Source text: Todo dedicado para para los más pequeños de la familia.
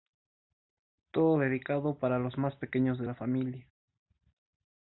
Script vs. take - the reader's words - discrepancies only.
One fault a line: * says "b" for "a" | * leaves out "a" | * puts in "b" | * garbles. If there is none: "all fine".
* leaves out "para"